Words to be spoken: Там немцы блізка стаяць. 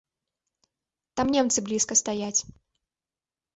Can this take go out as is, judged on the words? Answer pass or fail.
pass